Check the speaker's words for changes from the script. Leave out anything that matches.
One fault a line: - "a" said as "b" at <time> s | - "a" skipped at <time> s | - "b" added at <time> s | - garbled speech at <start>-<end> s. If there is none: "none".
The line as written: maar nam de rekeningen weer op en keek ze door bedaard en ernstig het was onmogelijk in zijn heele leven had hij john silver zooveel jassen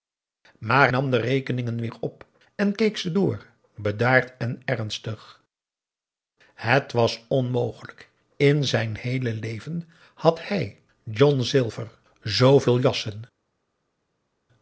none